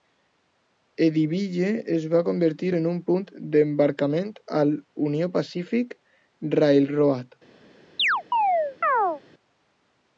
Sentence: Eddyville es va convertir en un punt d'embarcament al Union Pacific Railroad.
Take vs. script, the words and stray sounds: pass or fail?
fail